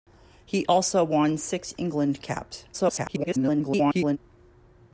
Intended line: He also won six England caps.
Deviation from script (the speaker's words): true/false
true